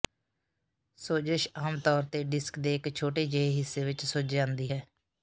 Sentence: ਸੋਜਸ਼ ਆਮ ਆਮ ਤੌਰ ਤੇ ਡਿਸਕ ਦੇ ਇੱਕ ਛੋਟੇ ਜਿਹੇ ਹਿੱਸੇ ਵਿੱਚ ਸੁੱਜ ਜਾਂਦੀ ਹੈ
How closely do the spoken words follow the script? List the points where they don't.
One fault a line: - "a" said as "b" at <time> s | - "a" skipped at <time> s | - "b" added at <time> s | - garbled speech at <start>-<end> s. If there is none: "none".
- "ਆਮ" skipped at 1.8 s